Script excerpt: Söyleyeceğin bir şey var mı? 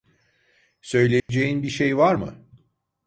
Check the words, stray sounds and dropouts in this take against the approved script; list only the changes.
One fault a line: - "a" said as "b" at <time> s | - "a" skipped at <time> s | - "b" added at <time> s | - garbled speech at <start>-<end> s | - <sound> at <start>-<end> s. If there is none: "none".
- dropout at 1.2-1.3 s